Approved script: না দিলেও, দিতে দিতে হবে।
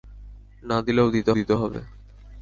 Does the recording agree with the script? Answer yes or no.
yes